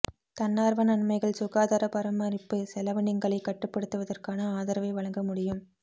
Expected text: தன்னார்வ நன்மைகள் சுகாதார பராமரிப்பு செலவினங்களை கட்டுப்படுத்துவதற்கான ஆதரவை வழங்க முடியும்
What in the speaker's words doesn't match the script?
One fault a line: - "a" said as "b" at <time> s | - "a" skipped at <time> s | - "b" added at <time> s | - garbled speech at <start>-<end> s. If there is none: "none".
none